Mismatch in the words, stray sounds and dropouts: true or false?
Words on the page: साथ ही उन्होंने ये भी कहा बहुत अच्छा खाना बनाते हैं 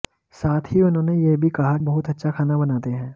false